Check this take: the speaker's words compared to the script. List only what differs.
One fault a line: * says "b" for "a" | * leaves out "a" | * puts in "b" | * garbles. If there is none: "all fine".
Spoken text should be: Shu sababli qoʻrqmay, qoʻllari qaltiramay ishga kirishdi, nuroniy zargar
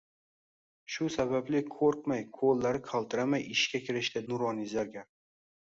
all fine